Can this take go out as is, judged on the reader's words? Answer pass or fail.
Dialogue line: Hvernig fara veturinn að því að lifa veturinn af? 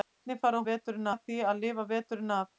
pass